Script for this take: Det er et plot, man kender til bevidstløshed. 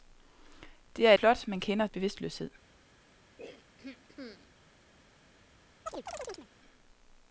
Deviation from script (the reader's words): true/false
true